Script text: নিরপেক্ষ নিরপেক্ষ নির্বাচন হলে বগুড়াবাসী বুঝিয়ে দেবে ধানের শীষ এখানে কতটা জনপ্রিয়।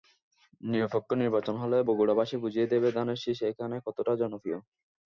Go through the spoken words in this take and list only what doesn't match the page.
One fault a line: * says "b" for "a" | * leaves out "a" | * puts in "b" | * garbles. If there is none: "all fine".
* leaves out "নিরপেক্ষ"